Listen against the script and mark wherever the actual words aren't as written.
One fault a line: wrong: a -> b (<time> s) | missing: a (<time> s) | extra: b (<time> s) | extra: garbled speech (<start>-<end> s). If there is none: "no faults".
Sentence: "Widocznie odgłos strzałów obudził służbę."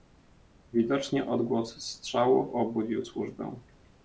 no faults